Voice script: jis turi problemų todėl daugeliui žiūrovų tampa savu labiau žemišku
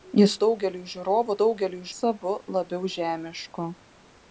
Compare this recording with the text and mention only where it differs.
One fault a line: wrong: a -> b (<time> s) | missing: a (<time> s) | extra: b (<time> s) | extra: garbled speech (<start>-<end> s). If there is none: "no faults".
missing: turi problemų todėl (0.3 s)
wrong: tampa -> daugeliui (1.4 s)